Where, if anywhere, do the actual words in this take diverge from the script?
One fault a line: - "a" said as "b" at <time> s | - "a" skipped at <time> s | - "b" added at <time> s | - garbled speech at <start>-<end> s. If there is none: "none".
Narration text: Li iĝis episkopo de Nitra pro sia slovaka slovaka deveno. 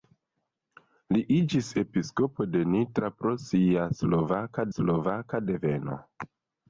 none